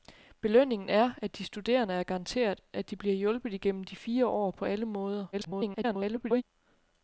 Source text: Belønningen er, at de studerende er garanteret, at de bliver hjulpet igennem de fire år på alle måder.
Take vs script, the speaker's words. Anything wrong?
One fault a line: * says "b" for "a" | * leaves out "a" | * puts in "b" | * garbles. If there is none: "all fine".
* garbles